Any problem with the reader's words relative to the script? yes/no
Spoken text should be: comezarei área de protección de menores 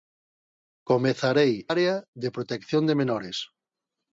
no